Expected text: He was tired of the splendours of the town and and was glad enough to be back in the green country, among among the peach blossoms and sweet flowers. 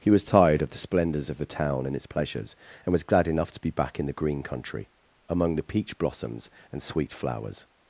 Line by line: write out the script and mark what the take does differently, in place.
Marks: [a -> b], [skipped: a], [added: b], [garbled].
He was tired of the splendours of the town and [added: its pleasures] and was glad enough to be back in the green country, among [skipped: among] the peach blossoms and sweet flowers.